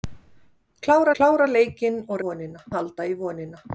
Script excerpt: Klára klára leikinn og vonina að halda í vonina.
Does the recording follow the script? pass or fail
pass